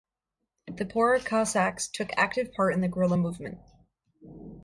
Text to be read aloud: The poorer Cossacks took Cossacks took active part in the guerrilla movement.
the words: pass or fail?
fail